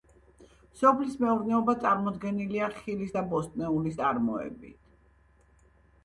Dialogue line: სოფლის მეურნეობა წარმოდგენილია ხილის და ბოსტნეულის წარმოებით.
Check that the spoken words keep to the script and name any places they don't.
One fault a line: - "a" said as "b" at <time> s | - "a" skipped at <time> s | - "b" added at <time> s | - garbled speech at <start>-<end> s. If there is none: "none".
none